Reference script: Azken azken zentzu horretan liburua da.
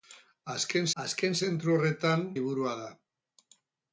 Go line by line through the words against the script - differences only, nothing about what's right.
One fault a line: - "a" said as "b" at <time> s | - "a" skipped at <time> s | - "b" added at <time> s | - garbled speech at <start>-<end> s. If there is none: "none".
none